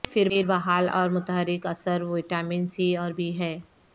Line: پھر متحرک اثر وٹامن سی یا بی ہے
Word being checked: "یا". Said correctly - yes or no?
no